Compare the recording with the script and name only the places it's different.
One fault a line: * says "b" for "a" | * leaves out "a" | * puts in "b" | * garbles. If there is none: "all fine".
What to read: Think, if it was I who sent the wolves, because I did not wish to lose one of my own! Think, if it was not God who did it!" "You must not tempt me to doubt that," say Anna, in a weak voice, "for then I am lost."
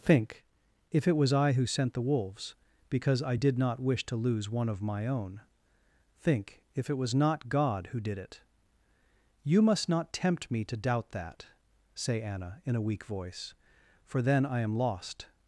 all fine